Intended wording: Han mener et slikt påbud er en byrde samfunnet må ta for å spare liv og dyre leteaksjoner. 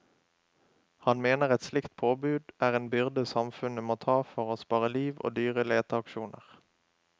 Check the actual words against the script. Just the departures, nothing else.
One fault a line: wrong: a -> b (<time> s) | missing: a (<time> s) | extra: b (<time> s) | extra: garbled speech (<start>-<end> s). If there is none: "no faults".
no faults